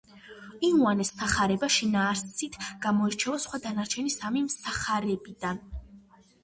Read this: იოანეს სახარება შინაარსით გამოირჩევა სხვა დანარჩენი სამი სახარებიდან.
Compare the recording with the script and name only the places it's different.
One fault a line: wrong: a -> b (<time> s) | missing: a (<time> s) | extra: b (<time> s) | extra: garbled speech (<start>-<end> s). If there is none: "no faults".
no faults